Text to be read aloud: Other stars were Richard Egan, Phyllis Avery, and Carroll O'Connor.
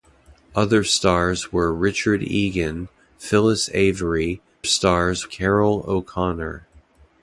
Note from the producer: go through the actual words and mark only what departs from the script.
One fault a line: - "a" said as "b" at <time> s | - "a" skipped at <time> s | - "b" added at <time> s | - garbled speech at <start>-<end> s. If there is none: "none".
- "and" said as "stars" at 4.6 s